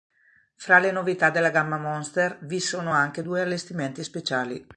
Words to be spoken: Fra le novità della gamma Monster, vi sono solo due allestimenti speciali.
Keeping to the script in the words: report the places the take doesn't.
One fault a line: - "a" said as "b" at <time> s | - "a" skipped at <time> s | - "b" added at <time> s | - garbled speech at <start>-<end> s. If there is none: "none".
- "solo" said as "anche" at 2.9 s